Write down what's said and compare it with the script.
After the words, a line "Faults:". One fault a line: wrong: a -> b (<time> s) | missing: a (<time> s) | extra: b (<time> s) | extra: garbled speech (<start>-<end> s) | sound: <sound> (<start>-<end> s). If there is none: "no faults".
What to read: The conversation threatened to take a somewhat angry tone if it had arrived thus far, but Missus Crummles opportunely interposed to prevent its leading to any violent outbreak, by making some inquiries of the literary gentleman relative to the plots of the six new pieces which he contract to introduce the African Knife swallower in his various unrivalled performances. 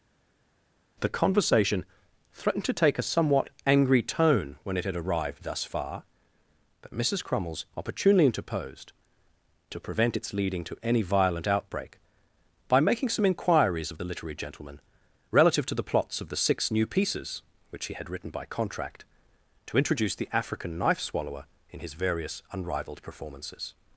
The conversation threatened to take a somewhat angry tone when it had arrived thus far, but Missus Crummles opportunely interposed to prevent its leading to any violent outbreak, by making some inquiries of the literary gentleman relative to the plots of the six new pieces which he had written by contract to introduce the African Knife swallower in his various unrivalled performances.
Faults:
wrong: if -> when (4.6 s)
extra: had written by (17.9 s)